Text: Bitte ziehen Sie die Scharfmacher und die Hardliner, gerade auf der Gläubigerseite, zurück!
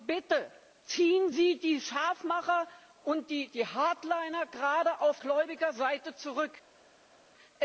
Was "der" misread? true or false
true